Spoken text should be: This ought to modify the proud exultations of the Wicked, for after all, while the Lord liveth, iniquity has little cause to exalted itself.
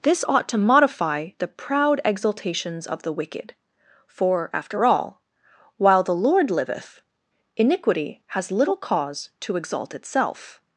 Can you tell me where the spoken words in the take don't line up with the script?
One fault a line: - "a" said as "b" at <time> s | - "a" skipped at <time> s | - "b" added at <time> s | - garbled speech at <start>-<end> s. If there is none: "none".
- "exalted" said as "exalt" at 9.6 s